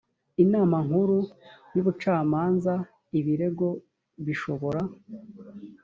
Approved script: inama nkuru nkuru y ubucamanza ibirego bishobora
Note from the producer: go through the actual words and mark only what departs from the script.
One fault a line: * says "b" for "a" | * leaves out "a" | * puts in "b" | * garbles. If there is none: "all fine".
* leaves out "nkuru"